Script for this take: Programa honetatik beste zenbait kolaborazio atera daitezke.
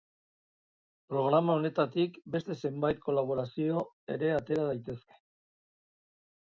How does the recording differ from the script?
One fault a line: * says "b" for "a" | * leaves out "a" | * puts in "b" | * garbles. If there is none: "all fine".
* puts in "ere"